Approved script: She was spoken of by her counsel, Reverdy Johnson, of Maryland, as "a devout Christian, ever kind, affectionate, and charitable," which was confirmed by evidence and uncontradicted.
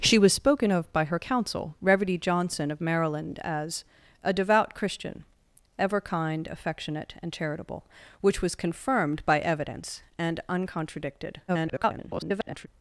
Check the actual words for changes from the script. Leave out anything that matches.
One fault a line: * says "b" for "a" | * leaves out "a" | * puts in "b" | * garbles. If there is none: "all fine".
* garbles